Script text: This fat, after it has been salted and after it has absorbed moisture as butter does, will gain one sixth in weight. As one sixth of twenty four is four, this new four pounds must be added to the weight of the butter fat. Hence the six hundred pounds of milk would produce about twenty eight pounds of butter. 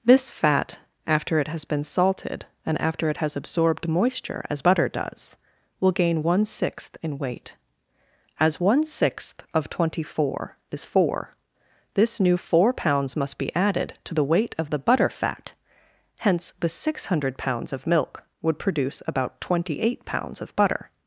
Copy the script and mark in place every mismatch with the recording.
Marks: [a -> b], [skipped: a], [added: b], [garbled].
This fat, after it has been salted and after it has absorbed moisture as butter does, will gain one sixth in weight. As one sixth of twenty four is four, this new four pounds must be added to the weight of the butter fat. Hence the six hundred pounds of milk would produce about twenty eight pounds of butter.